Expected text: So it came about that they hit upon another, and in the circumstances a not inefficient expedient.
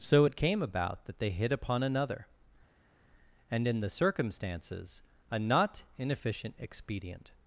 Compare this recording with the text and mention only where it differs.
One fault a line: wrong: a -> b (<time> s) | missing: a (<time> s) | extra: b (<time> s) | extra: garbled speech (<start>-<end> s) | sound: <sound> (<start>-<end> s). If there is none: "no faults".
no faults